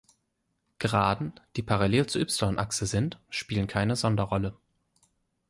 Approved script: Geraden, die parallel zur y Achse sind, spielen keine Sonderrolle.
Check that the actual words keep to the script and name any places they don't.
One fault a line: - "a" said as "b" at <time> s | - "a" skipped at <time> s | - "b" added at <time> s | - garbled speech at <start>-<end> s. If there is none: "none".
none